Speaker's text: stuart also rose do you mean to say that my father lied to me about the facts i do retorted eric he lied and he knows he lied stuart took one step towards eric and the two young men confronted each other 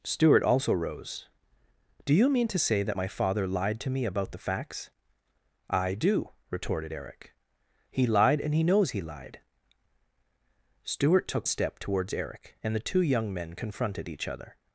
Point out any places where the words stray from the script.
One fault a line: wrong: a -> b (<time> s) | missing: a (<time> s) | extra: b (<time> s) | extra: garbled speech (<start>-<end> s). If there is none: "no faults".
missing: one (11.5 s)